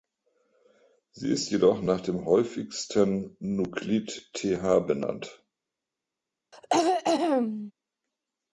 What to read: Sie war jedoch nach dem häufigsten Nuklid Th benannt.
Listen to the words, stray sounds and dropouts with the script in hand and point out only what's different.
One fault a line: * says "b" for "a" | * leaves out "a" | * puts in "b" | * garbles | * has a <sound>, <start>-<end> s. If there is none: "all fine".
* says "ist" for "war"
* has a throat clearing, 6.5-7.7 s